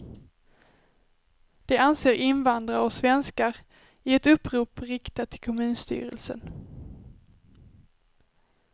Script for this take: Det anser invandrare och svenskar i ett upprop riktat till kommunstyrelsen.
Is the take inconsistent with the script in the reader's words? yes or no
no